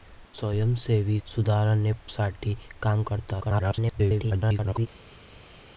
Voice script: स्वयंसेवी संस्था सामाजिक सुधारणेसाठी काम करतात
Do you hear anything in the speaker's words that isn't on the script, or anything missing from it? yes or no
yes